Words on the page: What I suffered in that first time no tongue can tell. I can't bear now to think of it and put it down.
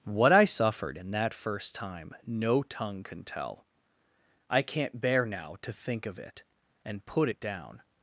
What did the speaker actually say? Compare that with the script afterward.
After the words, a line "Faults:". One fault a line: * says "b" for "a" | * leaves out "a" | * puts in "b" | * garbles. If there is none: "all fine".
What I suffered in that first time no tongue can tell. I can't bear now to think of it and put it down.
Faults:
all fine